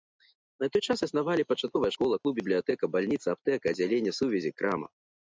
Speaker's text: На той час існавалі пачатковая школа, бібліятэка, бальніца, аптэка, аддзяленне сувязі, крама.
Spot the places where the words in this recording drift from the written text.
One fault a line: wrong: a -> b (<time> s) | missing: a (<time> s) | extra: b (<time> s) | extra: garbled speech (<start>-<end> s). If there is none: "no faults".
extra: клуб (2.2 s)